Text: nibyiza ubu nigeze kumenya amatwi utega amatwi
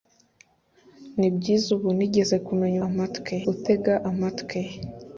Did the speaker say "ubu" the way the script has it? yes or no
yes